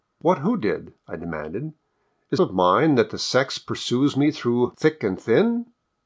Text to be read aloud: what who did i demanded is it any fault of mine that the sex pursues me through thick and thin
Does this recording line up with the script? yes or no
no